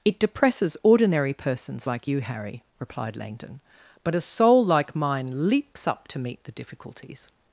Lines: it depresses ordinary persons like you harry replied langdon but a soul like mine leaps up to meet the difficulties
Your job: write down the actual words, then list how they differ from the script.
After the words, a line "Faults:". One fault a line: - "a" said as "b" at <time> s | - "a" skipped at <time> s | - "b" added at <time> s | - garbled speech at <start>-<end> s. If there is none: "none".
it depresses ordinary persons like you harry replied langdon but a soul like mine leaps up to meet the difficulties
Faults:
none